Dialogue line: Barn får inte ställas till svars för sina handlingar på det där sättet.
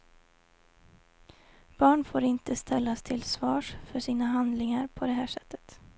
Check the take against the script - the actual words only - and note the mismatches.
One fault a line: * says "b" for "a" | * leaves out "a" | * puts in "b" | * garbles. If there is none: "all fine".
* says "här" for "där"